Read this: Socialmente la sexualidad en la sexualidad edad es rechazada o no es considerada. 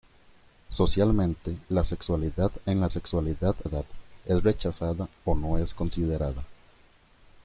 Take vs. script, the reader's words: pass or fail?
pass